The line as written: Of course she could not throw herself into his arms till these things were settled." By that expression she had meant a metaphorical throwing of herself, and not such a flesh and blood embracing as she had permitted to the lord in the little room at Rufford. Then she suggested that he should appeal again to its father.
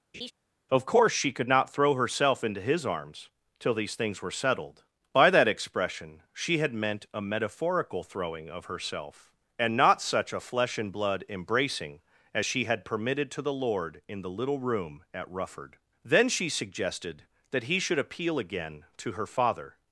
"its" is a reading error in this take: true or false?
true